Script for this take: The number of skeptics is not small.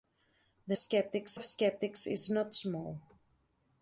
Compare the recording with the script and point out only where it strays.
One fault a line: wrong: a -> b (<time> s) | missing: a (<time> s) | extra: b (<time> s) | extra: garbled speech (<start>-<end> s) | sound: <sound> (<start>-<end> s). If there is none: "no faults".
wrong: number -> skeptics (0.7 s)